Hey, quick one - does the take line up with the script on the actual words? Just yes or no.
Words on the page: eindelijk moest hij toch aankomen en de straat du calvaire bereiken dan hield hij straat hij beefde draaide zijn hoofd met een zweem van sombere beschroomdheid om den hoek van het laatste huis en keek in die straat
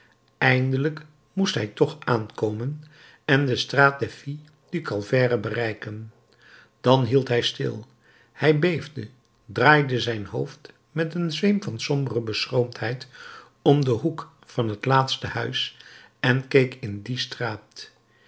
no